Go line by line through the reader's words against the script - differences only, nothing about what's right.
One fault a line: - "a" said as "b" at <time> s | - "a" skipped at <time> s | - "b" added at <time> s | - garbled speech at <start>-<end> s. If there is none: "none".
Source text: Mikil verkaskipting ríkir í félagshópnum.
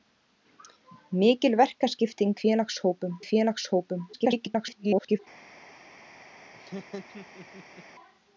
- "ríkir" said as "félagshópnum" at 2.4 s
- garbled speech at 4.1-5.2 s